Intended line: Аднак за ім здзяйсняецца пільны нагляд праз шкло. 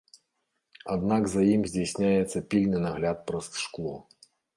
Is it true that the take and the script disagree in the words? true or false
false